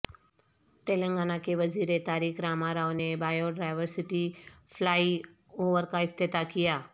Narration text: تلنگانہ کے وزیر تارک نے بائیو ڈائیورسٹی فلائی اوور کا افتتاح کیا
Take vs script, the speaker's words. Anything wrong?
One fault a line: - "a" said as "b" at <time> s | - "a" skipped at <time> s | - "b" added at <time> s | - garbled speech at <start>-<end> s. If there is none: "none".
- "راما راو" added at 2.4 s